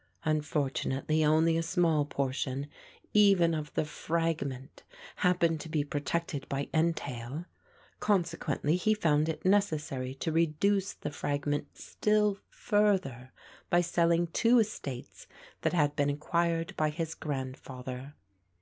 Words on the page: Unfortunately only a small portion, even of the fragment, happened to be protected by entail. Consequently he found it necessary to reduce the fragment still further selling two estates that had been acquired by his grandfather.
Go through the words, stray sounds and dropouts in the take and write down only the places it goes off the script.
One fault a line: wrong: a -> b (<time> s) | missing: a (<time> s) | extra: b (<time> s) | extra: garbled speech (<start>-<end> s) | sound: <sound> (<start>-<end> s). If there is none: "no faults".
extra: by (13.7 s)